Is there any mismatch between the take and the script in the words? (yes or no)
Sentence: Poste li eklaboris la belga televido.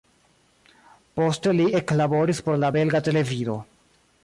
yes